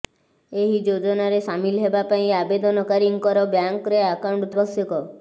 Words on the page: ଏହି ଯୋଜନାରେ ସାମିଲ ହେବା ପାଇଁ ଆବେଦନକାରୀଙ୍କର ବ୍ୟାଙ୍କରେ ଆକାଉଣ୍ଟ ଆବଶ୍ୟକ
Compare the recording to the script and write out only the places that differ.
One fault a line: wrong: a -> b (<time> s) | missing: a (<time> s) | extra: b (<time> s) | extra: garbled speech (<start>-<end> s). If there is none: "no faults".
no faults